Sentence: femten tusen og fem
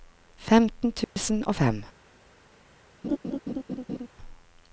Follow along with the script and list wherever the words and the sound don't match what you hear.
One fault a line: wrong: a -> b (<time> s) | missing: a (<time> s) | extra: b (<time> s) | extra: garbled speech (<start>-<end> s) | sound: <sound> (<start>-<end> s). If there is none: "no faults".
sound: dropout (1.0-1.2 s)
sound: laugh (3.0-4.1 s)